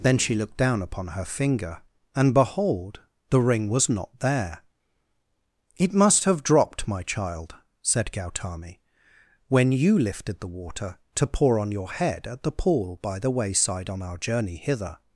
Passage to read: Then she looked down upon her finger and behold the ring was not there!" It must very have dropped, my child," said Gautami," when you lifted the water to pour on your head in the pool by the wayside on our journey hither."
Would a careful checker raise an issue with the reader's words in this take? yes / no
yes